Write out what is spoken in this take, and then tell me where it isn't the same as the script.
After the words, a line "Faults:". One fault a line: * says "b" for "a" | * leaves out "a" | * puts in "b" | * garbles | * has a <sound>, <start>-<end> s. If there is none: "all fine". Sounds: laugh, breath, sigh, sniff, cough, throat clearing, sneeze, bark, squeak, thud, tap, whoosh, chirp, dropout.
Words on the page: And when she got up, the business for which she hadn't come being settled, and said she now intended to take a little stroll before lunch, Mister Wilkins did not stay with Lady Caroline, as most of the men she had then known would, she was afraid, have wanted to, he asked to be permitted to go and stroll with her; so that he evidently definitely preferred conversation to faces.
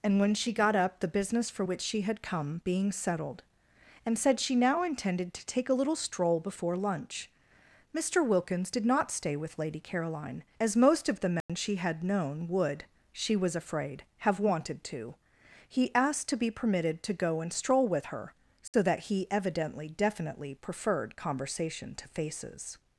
And when she got up, the business for which she had come being settled, and said she now intended to take a little stroll before lunch, Mister Wilkins did not stay with Lady Caroline, as most of the men she had known would, she was afraid, have wanted to, he asked to be permitted to go and stroll with her; so that he evidently definitely preferred conversation to faces.
Faults:
* says "had" for "hadn't"
* has a dropout, 11.4-11.5 s
* leaves out "then"
* has a dropout, 18.7-18.7 s